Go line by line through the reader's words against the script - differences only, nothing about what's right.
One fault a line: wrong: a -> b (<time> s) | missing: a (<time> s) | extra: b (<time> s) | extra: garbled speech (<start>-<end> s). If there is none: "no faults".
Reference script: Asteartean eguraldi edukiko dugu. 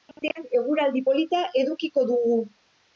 extra: polita (1.1 s)